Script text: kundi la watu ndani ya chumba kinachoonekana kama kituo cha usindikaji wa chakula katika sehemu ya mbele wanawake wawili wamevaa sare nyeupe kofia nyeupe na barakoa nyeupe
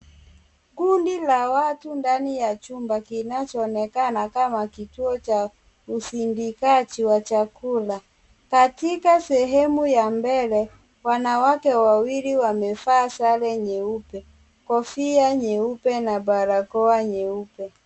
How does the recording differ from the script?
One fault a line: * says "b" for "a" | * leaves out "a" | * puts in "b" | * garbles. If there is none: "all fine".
all fine